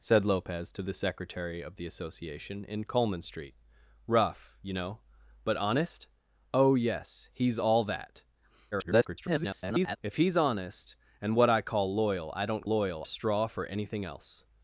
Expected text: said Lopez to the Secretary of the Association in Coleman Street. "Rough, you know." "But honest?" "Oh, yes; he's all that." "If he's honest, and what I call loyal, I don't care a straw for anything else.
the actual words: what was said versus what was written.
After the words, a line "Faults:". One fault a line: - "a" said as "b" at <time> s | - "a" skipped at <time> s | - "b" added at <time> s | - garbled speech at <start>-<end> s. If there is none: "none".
said Lopez to the Secretary of the Association in Coleman Street. "Rough, you know." "But honest?" "Oh, yes; he's all that." [garbled] "If he's honest, and what I call loyal, I don't loyal a straw for anything else.
Faults:
- garbled speech at 8.7-10.0 s
- "care" said as "loyal" at 12.7 s